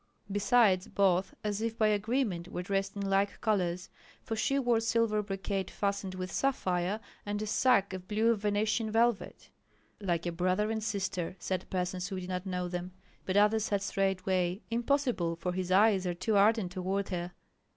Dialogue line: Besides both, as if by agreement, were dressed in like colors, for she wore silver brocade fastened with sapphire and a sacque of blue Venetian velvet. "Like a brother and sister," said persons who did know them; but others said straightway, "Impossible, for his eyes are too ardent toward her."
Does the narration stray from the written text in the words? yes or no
yes